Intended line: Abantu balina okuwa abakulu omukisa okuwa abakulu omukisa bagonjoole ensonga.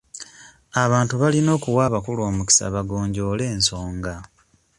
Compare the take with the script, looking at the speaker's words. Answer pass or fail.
fail